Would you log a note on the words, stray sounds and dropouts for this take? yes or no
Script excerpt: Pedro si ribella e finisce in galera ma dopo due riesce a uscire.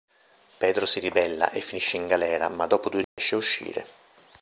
yes